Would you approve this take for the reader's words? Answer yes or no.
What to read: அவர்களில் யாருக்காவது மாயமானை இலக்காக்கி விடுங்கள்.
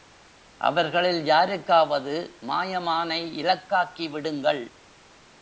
yes